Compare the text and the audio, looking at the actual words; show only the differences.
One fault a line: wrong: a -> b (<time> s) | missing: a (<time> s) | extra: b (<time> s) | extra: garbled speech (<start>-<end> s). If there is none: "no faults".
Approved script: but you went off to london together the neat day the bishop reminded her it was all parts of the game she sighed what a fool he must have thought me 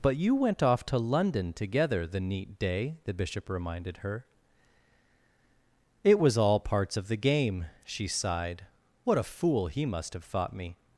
no faults